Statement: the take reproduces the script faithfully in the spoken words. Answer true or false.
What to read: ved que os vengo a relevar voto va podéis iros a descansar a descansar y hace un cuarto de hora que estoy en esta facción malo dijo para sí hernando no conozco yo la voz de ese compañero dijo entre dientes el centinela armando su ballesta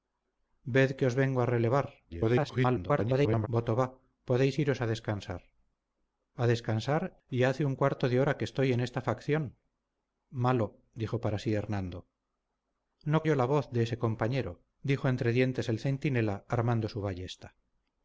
false